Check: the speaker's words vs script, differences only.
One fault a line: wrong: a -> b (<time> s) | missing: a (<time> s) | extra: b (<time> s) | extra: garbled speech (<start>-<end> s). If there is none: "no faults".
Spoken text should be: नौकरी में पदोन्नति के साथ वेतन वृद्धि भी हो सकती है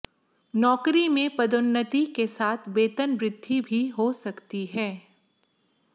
no faults